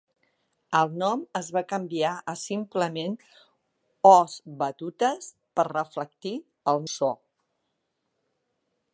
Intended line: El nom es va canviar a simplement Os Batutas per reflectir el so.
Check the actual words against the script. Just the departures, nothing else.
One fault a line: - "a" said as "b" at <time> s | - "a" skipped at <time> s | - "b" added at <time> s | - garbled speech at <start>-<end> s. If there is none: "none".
none